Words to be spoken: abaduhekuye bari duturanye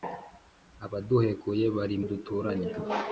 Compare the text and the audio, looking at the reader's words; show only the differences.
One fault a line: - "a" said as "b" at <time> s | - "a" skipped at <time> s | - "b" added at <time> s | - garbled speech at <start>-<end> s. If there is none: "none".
none